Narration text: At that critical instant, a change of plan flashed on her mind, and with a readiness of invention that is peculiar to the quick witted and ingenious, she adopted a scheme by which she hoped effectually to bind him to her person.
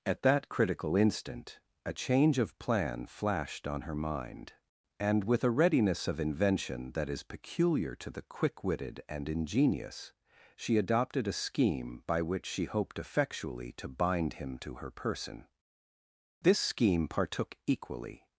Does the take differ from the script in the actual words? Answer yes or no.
yes